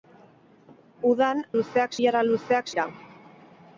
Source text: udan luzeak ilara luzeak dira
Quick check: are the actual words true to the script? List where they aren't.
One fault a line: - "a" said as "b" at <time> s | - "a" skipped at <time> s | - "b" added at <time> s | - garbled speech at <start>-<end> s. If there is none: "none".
none